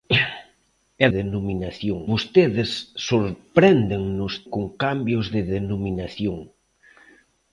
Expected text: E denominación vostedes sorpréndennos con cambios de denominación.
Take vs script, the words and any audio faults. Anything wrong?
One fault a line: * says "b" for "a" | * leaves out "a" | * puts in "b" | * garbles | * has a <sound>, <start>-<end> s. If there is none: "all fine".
all fine